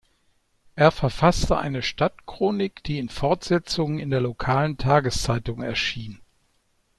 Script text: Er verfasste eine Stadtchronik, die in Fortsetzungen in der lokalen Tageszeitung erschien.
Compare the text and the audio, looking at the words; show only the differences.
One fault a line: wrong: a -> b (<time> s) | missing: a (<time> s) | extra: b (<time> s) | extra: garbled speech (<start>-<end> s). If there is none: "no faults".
no faults